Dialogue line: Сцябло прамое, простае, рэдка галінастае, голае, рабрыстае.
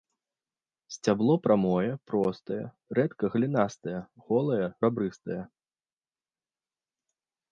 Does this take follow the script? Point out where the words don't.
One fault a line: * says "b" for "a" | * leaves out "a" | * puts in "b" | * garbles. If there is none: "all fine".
all fine